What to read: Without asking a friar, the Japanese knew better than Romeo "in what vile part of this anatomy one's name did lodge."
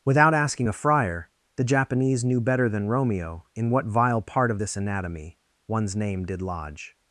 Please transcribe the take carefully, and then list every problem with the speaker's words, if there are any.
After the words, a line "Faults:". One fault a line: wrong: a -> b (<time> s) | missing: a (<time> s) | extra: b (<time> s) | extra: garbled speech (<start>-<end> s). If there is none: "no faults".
Without asking a friar, the Japanese knew better than Romeo "in what vile part of this anatomy one's name did lodge."
Faults:
no faults